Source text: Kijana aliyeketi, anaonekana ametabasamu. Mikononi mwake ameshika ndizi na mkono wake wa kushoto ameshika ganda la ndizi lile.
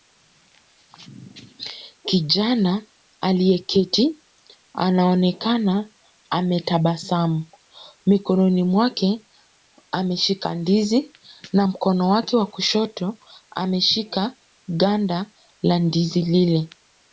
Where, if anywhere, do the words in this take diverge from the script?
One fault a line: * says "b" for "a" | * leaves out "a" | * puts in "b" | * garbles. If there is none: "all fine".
all fine